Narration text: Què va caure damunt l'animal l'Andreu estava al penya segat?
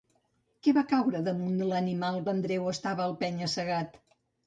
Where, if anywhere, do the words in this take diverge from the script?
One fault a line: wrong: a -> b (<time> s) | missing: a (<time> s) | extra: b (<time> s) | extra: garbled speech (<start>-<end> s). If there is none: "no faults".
no faults